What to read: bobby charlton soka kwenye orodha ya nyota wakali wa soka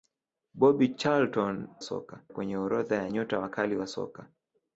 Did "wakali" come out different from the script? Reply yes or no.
no